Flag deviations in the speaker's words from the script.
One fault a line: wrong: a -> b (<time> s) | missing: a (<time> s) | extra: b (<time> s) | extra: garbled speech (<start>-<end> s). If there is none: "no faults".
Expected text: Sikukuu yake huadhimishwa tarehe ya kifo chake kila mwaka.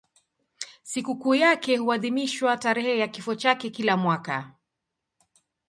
no faults